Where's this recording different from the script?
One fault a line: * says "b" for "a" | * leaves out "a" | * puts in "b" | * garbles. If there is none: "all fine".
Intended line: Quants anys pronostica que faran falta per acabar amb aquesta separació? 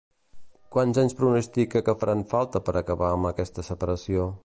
all fine